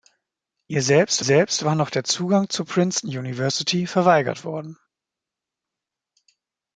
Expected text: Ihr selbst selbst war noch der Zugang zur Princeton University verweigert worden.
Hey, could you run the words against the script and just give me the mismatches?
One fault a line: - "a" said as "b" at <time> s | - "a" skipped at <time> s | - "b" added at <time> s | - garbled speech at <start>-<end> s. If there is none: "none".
none